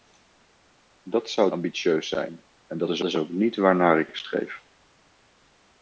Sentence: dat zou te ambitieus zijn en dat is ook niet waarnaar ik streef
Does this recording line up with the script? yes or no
no